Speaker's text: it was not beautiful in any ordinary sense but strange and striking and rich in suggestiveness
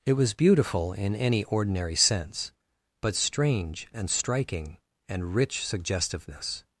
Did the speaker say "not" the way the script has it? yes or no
no